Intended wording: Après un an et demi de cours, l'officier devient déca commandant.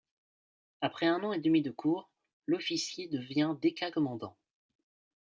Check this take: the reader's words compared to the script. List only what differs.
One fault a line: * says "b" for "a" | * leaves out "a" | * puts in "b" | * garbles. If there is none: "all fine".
all fine